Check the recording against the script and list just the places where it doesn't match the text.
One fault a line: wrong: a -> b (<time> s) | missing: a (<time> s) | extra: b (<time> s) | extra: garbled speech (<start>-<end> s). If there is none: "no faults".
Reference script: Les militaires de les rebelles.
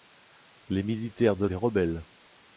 no faults